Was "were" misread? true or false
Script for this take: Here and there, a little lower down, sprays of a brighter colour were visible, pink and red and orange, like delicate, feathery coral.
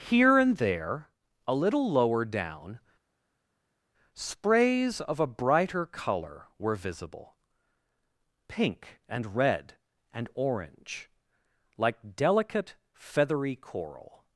false